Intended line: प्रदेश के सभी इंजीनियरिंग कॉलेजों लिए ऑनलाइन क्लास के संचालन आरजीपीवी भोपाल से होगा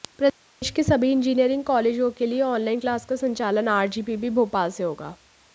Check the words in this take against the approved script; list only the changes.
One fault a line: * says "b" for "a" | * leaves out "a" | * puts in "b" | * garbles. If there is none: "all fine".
* puts in "के"
* says "का" for "के"